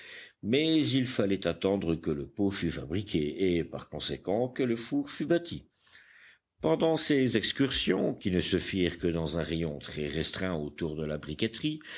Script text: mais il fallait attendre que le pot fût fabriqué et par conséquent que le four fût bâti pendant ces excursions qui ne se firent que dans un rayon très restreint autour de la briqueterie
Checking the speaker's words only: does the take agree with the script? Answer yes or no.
yes